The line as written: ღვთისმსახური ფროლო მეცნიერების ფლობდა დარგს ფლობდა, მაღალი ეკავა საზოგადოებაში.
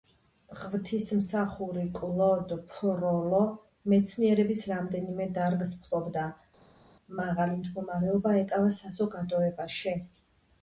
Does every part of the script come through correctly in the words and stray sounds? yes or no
no